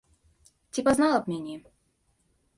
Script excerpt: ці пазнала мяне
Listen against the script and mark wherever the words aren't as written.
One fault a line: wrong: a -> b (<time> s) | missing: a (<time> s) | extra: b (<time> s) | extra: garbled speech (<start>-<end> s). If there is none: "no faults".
extra: б (1.2 s)